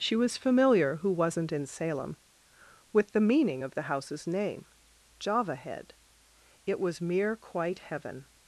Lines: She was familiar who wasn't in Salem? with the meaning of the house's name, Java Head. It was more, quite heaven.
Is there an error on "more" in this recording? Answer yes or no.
yes